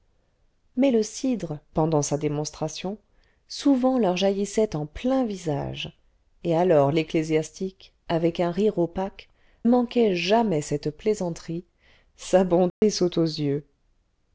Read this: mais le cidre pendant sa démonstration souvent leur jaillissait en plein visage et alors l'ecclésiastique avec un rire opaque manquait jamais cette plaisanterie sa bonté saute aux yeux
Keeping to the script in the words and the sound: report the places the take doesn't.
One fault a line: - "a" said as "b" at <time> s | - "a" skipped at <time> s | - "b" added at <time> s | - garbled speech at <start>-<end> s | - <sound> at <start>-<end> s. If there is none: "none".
- dropout at 12.7-12.8 s